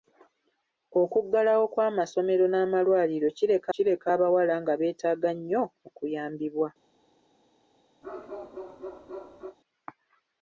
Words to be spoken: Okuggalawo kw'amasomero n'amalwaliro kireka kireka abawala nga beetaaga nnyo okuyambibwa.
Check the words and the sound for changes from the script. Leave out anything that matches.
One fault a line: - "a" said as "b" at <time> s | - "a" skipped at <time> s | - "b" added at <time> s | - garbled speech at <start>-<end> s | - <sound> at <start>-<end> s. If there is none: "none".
- bark at 8.0-9.6 s